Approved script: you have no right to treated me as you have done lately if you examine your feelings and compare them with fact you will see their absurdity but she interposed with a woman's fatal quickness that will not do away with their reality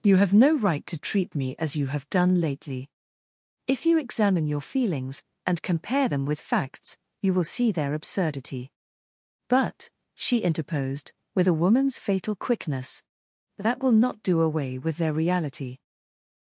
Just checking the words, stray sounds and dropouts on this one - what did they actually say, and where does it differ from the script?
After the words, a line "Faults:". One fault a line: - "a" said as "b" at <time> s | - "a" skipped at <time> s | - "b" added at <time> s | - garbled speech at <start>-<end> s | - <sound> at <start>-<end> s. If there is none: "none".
you have no right to treat me as you have done lately if you examine your feelings and compare them with facts you will see their absurdity but she interposed with a woman's fatal quickness that will not do away with their reality
Faults:
- "treated" said as "treat" at 1.0 s
- "fact" said as "facts" at 6.4 s